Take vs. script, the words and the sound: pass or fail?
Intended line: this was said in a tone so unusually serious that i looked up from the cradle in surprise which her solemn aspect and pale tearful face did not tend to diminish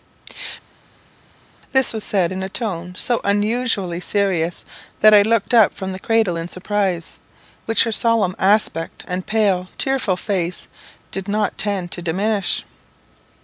pass